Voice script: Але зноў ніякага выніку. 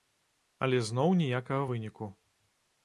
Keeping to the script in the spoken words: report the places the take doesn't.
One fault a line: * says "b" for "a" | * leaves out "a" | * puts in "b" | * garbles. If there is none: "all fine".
all fine